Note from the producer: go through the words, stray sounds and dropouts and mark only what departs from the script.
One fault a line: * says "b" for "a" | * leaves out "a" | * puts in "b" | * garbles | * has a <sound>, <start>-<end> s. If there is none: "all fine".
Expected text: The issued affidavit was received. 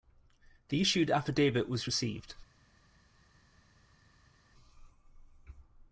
all fine